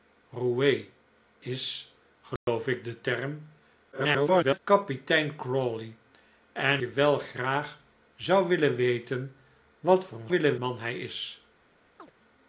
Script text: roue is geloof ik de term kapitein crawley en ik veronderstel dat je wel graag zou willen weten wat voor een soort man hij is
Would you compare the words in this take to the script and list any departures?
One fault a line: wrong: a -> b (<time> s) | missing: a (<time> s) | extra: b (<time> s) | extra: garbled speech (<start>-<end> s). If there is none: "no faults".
extra: garbled speech (3.9-4.6 s)
missing: ik veronderstel dat (6.8 s)
wrong: soort -> willen (10.3 s)